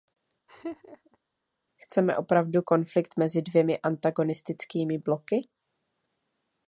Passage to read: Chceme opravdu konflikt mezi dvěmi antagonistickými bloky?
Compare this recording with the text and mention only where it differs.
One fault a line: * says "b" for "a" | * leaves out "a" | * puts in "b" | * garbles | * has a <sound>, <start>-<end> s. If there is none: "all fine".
* has a laugh, 0.5-1.2 s